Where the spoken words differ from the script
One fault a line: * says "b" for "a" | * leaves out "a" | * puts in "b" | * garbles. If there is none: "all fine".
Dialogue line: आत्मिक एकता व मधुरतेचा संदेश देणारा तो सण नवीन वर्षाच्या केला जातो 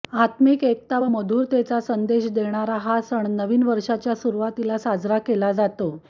* says "हा" for "तो"
* puts in "सुरुवातीला साजरा"